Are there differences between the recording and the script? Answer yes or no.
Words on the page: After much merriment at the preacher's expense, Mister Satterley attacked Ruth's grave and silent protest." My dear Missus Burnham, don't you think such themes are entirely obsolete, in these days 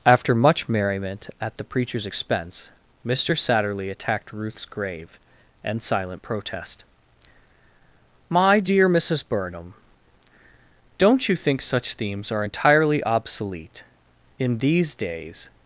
no